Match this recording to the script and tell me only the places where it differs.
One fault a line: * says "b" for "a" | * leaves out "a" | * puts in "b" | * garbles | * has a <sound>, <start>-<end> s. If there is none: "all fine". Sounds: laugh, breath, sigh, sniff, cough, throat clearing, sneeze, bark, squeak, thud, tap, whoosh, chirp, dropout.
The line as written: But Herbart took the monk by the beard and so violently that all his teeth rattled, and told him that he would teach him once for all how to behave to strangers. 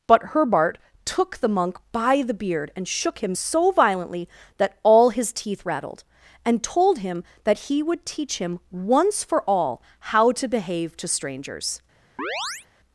* puts in "shook him"
* has a chirp, 12.2-12.7 s